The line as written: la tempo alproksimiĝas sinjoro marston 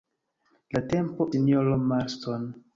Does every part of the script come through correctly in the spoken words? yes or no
no